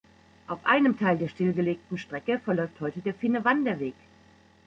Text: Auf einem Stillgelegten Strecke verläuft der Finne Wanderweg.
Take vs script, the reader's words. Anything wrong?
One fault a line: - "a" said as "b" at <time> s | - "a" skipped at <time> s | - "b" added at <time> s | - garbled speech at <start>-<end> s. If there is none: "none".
- "Teil der" added at 1.0 s
- "heute" added at 2.8 s